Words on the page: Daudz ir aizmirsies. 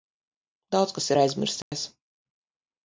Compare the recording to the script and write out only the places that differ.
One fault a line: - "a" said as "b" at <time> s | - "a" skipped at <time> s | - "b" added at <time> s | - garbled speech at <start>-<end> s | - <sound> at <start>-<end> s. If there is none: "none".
- "kas" added at 1.0 s
- dropout at 1.6-1.7 s